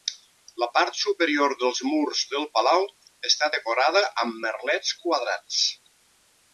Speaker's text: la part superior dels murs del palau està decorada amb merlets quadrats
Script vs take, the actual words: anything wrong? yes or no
no